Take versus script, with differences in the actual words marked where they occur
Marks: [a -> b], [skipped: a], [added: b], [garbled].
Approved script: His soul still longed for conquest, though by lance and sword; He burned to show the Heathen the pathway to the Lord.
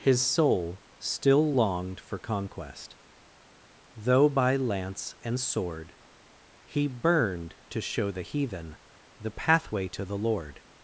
His soul still longed for conquest, though by lance and sword; He burned to show the Heathen the pathway to the Lord.